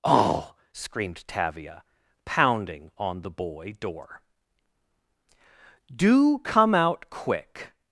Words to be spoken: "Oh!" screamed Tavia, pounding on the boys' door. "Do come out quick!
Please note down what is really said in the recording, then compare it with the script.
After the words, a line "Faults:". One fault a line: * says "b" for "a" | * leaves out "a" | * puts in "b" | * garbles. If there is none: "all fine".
"Oh!" screamed Tavia, pounding on the boy' door. "Do come out quick!
Faults:
* says "boy" for "boys"